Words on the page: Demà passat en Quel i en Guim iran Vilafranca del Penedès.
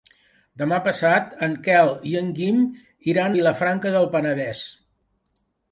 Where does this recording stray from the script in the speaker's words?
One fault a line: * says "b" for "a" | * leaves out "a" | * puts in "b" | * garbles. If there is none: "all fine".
all fine